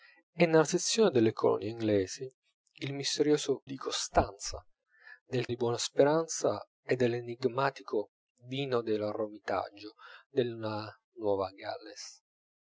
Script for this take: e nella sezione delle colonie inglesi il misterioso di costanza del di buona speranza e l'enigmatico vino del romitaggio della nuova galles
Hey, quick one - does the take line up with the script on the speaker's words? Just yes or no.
yes